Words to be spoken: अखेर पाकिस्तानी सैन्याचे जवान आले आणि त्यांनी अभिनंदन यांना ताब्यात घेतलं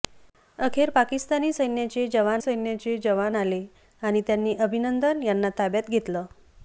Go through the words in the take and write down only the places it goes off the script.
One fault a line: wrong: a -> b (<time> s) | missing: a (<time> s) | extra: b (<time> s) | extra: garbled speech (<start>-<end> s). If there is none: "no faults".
extra: सैन्याचे जवान (2.4 s)